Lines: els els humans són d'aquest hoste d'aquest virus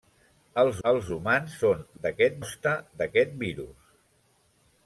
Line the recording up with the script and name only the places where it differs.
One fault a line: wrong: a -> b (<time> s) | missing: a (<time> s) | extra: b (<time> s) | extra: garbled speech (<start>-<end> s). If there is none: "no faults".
no faults